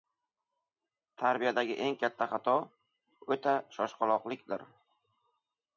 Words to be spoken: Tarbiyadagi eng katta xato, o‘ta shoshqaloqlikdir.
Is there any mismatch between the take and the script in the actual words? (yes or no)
no